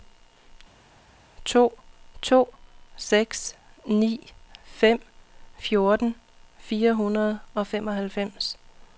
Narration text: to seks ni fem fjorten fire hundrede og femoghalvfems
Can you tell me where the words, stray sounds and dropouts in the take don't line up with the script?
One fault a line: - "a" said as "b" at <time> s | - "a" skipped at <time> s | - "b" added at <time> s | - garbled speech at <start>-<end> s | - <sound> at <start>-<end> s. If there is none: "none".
- "to" added at 2.2 s